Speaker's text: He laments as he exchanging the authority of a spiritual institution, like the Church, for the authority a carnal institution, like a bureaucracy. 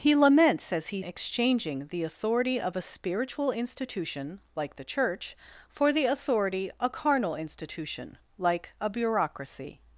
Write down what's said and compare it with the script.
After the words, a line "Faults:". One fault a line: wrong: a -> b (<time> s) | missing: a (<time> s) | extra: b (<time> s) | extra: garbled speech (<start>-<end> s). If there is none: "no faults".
He laments as he exchanging the authority of a spiritual institution, like the Church, for the authority a carnal institution, like a bureaucracy.
Faults:
no faults